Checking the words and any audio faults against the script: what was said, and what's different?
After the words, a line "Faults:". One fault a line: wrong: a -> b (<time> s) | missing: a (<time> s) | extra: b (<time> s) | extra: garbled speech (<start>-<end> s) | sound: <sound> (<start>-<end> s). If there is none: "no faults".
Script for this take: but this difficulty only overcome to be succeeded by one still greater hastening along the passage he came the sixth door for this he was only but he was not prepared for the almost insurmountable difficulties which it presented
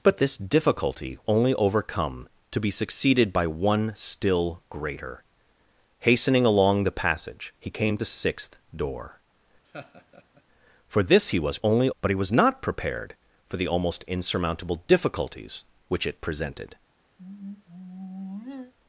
but this difficulty only overcome to be succeeded by one still greater hastening along the passage he came the sixth door for this he was only but he was not prepared for the almost insurmountable difficulties which it presented
Faults:
sound: laugh (9.6-10.4 s)
sound: sigh (17.2-18.7 s)